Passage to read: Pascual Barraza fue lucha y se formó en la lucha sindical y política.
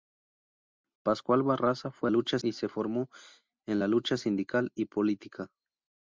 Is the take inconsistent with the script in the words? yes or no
no